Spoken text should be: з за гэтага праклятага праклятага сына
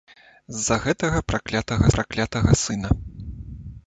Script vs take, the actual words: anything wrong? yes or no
no